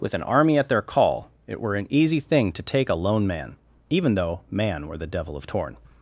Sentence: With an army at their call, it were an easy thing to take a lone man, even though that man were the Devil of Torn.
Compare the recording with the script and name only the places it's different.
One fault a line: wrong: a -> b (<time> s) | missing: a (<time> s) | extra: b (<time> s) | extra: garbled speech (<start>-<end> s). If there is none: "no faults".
missing: that (4.4 s)